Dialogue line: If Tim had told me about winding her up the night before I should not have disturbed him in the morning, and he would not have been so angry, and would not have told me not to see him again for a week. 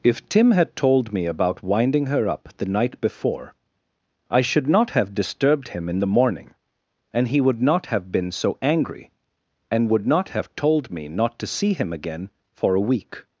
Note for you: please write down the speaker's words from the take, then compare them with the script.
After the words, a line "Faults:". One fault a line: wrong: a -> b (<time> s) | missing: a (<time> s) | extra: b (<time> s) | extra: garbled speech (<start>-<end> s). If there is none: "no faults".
If Tim had told me about winding her up the night before I should not have disturbed him in the morning, and he would not have been so angry, and would not have told me not to see him again for a week.
Faults:
no faults